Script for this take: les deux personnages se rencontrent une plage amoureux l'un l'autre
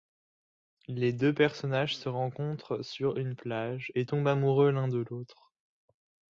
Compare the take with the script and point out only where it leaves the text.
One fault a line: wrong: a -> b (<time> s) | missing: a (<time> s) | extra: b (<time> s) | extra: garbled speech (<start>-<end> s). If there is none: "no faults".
extra: sur (2.8 s)
extra: et tombent (3.9 s)
extra: de (4.9 s)